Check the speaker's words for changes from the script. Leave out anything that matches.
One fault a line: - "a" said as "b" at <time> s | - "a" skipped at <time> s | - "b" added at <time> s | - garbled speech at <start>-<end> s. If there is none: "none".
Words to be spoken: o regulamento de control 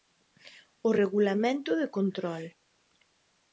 none